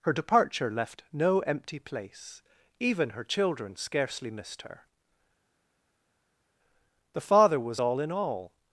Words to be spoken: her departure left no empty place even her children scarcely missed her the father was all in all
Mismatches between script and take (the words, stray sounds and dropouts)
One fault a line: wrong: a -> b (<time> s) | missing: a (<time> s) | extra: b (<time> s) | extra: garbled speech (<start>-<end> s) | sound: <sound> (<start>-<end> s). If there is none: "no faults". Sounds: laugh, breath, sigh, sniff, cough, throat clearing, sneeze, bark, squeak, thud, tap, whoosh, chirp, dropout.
no faults